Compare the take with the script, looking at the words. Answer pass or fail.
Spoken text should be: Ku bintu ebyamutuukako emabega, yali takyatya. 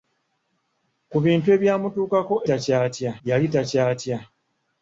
fail